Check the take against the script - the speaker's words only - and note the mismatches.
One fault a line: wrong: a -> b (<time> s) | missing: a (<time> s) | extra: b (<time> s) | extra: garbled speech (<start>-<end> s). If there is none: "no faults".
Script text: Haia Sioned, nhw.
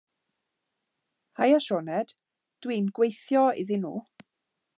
extra: dwi'n gweithio iddyn (2.6 s)